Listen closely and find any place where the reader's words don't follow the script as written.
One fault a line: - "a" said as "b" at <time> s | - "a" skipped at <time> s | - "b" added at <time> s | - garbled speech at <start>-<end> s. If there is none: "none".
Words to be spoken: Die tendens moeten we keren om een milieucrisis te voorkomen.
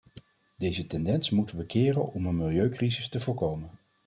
- "Die" said as "Deze" at 0.6 s